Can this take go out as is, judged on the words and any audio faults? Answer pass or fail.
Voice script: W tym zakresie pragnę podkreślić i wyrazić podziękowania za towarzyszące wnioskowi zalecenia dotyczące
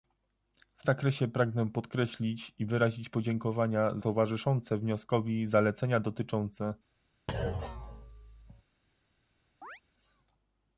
fail